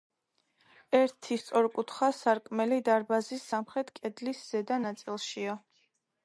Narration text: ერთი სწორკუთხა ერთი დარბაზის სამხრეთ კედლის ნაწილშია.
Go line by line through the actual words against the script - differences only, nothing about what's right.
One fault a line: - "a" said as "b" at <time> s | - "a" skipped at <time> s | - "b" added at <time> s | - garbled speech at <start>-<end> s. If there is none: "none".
- "ერთი" said as "სარკმელი" at 2.2 s
- "ზედა" added at 4.5 s